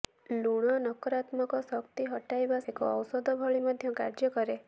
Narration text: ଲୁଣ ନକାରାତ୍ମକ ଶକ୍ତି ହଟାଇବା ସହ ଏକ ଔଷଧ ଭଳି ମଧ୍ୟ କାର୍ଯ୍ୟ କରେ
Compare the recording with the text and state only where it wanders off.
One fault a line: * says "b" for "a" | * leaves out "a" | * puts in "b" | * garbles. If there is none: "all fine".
* leaves out "ସହ"